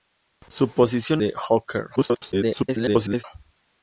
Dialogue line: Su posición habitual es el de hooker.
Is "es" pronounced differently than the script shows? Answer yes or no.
yes